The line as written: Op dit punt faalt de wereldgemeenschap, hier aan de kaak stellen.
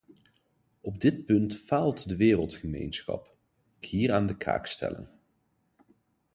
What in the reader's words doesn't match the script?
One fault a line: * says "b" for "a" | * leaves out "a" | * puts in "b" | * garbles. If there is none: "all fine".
all fine